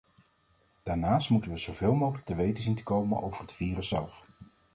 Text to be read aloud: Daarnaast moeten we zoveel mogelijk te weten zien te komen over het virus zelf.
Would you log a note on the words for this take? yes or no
no